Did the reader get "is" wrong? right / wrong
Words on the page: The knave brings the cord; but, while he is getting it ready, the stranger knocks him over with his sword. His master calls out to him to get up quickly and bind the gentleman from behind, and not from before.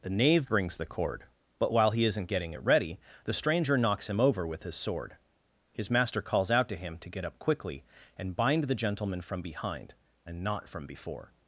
wrong